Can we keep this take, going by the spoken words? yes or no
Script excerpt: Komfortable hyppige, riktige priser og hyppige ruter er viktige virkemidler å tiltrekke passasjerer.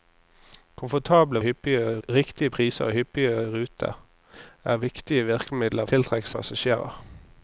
yes